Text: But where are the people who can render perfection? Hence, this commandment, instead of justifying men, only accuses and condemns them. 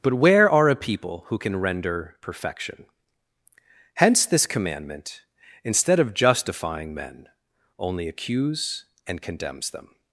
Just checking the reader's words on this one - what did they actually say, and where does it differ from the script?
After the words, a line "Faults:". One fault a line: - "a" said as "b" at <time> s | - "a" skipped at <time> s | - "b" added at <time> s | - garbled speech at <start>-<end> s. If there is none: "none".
But where are a people who can render perfection? Hence, this commandment, instead of justifying men, only accuse and condemns them.
Faults:
- "the" said as "a" at 0.7 s
- "accuses" said as "accuse" at 8.1 s